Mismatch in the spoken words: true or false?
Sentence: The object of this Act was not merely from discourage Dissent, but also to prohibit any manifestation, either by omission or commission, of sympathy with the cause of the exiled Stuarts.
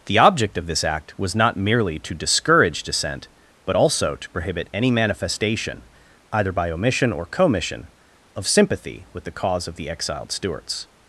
true